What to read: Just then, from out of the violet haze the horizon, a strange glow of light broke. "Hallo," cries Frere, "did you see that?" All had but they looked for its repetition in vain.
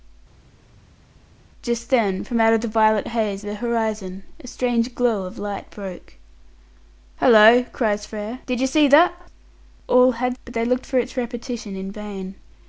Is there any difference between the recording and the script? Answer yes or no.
no